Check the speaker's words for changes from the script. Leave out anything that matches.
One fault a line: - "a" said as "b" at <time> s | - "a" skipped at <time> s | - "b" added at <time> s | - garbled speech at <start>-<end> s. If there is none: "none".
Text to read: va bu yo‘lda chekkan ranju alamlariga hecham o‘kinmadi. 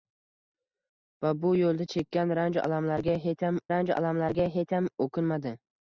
- "ranju alamlariga hecham" added at 3.7 s